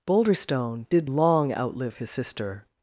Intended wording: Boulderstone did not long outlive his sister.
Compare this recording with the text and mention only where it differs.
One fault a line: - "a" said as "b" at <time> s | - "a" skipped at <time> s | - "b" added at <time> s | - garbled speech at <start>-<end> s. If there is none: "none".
- "not" skipped at 1.1 s